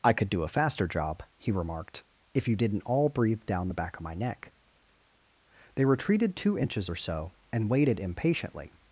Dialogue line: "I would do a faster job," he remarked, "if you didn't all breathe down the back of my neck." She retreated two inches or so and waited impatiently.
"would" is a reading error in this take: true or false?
true